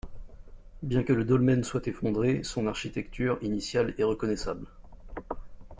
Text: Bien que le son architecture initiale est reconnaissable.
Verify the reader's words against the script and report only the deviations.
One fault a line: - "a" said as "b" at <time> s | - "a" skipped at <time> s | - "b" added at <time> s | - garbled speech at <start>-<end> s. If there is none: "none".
- "dolmen soit effondré" added at 1.2 s